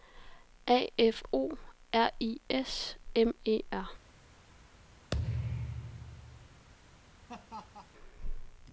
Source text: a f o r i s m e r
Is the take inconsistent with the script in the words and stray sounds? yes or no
yes